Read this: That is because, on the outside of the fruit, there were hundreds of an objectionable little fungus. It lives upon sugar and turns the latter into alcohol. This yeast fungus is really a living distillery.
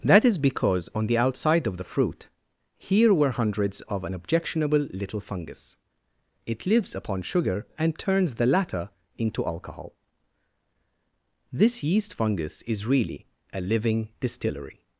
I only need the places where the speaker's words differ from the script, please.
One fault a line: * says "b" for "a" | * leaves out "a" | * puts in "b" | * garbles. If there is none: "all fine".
* says "here" for "there"